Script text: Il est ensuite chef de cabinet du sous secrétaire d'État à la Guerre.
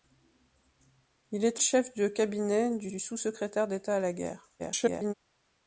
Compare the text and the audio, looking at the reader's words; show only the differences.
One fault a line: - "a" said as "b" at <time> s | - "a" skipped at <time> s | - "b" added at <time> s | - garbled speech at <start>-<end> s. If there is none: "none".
- "ensuite" skipped at 1.6 s
- "du" added at 2.9 s
- garbled speech at 4.6-5.1 s